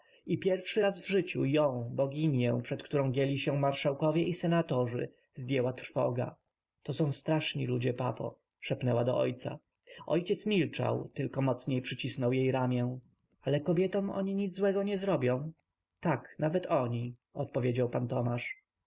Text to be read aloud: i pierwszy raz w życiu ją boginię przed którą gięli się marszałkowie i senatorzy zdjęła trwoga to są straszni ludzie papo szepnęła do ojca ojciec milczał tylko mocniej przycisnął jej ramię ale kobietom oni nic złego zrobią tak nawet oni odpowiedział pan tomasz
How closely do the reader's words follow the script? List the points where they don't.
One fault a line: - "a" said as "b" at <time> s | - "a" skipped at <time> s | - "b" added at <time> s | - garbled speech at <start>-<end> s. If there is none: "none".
- "nie" added at 14.8 s